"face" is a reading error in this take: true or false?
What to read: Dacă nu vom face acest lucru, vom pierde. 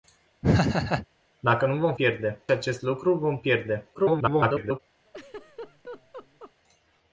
true